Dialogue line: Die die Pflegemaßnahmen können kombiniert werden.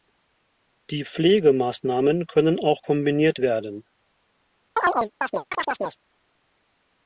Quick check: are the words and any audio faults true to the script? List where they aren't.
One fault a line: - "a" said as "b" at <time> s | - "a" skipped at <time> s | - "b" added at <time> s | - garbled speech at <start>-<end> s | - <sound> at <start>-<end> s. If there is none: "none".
- "die" skipped at 1.1 s
- "auch" added at 2.6 s
- chirp at 4.8-6.0 s